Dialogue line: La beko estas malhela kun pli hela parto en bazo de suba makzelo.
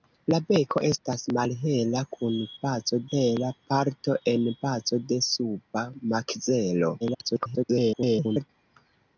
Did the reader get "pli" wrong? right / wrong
wrong